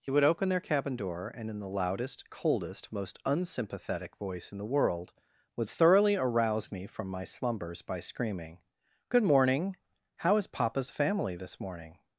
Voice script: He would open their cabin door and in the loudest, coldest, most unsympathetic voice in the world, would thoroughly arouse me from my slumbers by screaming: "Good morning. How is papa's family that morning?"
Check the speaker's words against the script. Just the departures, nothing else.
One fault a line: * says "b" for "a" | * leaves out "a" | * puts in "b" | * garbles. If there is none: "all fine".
* says "this" for "that"